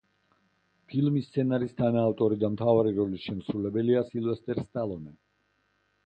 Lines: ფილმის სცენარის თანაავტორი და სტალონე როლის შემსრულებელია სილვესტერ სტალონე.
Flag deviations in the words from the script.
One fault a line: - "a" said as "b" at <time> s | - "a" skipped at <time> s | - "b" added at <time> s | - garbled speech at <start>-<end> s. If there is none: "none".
- "სტალონე" said as "მთავარი" at 2.5 s